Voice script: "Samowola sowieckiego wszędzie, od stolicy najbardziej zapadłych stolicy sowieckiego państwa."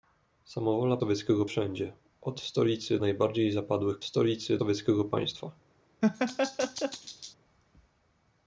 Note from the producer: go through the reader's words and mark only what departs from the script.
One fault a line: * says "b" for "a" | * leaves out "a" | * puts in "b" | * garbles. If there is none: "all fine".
all fine